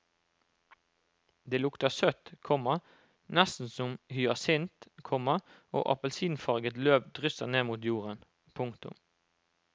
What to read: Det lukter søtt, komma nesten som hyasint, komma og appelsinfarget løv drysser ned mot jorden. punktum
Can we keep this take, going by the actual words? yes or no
yes